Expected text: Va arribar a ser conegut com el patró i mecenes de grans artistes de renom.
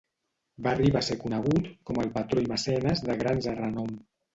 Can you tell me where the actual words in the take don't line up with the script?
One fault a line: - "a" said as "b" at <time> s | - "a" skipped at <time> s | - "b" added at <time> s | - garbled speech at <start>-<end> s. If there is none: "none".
- "artistes" skipped at 3.5 s